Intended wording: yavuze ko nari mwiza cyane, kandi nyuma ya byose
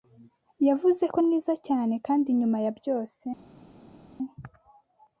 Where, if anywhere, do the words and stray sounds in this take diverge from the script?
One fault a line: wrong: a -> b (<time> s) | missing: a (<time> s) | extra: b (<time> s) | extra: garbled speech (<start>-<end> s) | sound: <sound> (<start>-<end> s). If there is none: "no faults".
missing: nari (1.2 s)